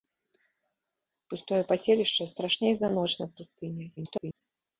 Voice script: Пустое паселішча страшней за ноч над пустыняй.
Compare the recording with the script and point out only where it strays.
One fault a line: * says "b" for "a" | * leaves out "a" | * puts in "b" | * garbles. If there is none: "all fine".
* garbles